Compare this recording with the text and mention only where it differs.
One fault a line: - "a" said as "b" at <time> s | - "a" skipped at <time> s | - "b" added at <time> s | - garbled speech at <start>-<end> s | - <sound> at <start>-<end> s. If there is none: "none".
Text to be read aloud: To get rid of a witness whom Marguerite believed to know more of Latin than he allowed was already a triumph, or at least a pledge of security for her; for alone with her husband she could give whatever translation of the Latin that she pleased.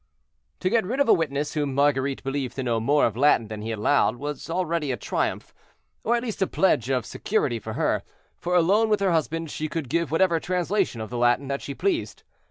none